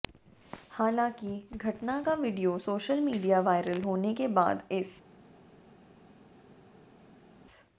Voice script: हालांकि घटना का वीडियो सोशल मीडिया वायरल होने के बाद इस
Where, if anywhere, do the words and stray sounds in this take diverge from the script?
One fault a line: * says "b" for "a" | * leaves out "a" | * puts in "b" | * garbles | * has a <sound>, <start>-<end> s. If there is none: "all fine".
all fine